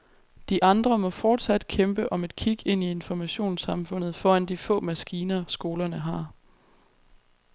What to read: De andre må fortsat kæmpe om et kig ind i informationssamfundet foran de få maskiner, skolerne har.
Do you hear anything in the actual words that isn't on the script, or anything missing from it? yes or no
no